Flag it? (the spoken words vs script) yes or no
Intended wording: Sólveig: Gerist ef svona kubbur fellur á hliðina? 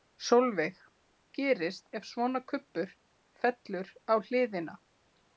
no